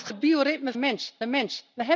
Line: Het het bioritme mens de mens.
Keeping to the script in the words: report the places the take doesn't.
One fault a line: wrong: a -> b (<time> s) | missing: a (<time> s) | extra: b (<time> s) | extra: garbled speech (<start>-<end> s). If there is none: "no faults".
no faults